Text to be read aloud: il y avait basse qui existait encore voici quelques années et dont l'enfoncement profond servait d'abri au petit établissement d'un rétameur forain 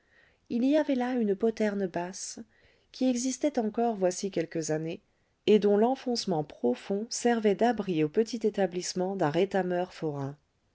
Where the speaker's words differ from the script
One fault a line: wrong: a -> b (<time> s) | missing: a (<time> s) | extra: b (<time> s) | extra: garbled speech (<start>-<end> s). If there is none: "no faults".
extra: là une poterne (0.9 s)